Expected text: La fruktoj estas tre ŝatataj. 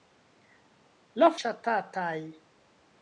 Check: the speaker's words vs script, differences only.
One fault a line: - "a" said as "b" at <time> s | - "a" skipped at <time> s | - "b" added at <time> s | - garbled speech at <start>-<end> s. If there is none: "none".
- "fruktoj estas tre" skipped at 1.3 s